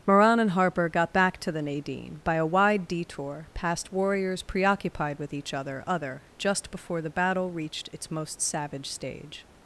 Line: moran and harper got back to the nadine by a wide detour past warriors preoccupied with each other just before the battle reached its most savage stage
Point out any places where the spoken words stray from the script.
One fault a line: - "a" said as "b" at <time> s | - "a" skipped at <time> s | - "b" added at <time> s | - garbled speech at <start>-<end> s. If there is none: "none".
- "other" added at 5.8 s